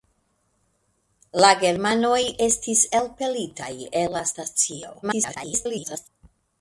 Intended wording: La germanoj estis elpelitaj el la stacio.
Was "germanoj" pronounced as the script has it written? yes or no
yes